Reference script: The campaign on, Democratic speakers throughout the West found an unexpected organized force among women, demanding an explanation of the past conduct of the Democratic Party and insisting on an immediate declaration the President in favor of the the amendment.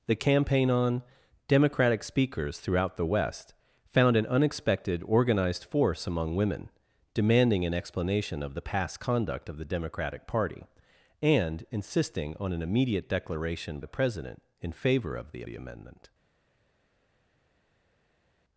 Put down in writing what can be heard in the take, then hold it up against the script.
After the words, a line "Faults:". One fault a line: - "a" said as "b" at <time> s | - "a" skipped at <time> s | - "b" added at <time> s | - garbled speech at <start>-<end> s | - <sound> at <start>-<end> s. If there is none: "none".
The campaign on, Democratic speakers throughout the West found an unexpected organized force among women, demanding an explanation of the past conduct of the Democratic Party and insisting on an immediate declaration the President in favor of the the amendment.
Faults:
none